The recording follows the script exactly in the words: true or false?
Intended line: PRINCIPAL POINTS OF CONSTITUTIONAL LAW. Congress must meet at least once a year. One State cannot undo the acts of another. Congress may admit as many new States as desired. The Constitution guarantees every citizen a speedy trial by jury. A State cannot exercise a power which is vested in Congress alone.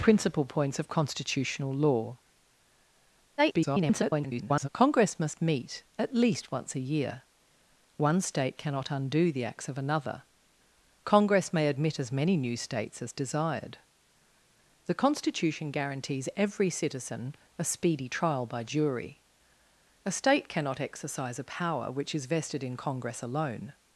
false